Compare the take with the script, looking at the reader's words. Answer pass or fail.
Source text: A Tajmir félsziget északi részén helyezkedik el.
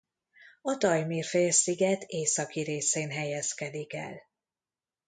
pass